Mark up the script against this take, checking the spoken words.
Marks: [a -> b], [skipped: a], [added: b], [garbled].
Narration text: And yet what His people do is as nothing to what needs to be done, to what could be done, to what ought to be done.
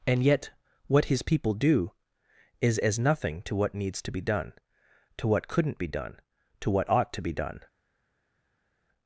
And yet what His people do is as nothing to what needs to be done, to what [could -> couldn't] be done, to what ought to be done.